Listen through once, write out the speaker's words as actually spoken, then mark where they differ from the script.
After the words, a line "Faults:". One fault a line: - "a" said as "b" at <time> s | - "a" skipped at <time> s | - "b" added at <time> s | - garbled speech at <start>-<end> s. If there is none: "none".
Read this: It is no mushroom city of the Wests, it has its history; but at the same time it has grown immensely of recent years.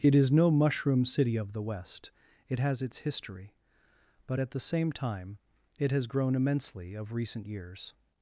It is no mushroom city of the West, it has its history; but at the same time it has grown immensely of recent years.
Faults:
- "Wests" said as "West" at 1.6 s